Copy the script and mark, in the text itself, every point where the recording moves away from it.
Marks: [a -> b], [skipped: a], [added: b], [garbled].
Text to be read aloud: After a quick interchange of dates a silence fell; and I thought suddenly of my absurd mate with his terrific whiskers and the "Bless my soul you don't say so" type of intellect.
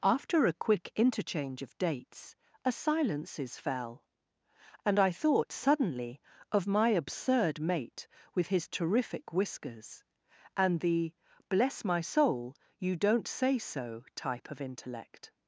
After a quick interchange of dates a [silence -> silences] fell; and I thought suddenly of my absurd mate with his terrific whiskers and the "Bless my soul you don't say so" type of intellect.